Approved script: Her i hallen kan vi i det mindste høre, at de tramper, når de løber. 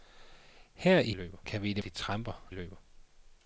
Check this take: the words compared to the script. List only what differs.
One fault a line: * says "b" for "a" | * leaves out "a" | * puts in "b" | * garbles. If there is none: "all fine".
* says "løber" for "hallen"
* leaves out "mindste høre at"
* leaves out "når de"